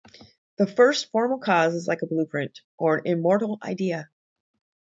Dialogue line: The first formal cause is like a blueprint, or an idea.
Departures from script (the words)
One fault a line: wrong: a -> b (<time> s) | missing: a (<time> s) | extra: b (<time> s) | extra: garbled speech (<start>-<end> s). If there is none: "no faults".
extra: immortal (3.0 s)